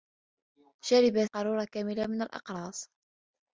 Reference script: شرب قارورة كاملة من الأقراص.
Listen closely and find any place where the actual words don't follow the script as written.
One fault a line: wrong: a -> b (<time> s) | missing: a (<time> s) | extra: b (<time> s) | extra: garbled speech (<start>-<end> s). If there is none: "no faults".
no faults